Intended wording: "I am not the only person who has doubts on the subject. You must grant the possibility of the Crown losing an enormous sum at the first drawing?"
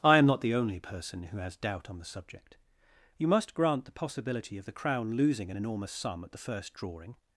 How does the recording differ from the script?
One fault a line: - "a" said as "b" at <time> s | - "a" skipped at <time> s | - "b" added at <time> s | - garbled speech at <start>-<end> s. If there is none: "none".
- "doubts" said as "doubt" at 1.6 s